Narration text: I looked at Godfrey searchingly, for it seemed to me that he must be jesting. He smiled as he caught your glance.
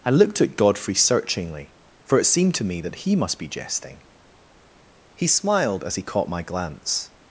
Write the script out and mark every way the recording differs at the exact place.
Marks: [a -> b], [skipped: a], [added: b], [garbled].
I looked at Godfrey searchingly, for it seemed to me that he must be jesting. He smiled as he caught [your -> my] glance.